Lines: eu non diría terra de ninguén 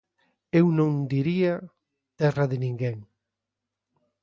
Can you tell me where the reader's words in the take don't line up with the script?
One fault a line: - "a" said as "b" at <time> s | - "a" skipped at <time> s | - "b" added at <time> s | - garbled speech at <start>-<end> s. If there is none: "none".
none